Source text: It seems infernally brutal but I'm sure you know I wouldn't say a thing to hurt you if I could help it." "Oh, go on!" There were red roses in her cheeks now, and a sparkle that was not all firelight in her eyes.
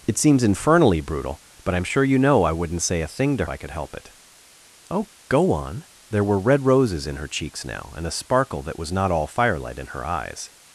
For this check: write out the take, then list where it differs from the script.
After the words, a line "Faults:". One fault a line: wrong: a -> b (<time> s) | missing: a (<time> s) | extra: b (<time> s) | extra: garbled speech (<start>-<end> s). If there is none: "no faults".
It seems infernally brutal but I'm sure you know I wouldn't say a thing to I could help it." "Oh, go on!" There were red roses in her cheeks now, and a sparkle that was not all firelight in her eyes.
Faults:
missing: hurt you if (3.5 s)